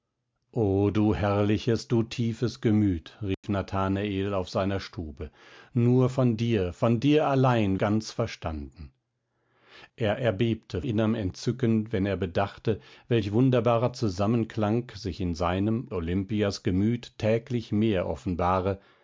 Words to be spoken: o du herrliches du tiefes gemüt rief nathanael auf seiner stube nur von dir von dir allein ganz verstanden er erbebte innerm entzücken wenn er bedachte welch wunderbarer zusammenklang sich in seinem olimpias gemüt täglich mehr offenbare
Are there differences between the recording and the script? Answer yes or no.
no